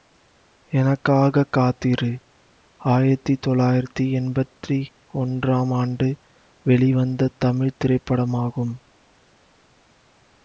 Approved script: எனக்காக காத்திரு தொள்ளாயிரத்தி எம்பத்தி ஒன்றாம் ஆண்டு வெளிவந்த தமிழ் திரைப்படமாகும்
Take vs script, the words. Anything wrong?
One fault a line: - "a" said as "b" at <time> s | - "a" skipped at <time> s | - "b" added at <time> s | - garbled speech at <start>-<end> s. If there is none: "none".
- "ஆயிரத்தி" added at 2.8 s